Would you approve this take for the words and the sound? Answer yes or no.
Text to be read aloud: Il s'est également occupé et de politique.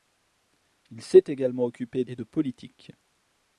yes